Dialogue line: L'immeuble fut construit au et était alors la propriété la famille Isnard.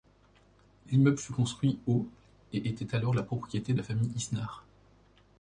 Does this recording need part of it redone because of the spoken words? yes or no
no